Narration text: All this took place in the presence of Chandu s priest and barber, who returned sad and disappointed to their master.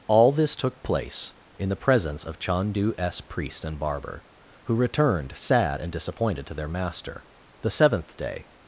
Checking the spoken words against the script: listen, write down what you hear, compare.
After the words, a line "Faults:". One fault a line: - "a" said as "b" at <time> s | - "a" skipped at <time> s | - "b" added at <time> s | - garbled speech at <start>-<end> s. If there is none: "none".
All this took place in the presence of Chandu s priest and barber, who returned sad and disappointed to their master. The seventh day
Faults:
- "The seventh day" added at 7.6 s